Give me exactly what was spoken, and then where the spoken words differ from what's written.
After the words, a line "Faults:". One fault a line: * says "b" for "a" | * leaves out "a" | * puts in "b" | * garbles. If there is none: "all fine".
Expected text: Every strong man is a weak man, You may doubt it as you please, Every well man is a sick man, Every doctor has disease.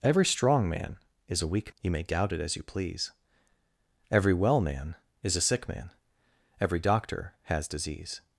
Every strong man is a weak You may doubt it as you please, Every well man is a sick man, Every doctor has disease.
Faults:
* leaves out "man"